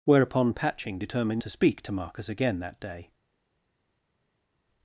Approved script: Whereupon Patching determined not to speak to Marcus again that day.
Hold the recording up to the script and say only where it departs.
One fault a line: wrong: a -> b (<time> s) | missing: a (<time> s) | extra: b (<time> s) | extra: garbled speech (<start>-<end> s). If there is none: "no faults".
missing: not (1.4 s)